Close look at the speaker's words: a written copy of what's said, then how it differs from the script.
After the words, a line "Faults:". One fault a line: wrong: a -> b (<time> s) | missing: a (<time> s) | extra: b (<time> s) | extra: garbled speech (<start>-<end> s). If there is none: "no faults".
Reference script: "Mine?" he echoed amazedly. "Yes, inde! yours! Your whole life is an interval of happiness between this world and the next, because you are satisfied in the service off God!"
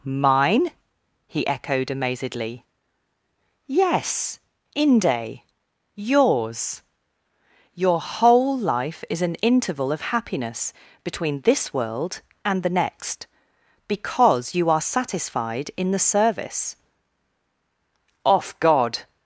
"Mine?" he echoed amazedly. "Yes, inde! yours! Your whole life is an interval of happiness between this world and the next, because you are satisfied in the service off God!"
Faults:
no faults